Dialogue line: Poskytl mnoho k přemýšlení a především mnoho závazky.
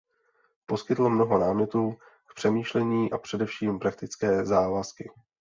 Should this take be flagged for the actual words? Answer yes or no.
yes